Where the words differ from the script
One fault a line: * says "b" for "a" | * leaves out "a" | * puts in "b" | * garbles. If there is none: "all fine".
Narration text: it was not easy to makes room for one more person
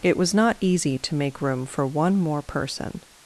* says "make" for "makes"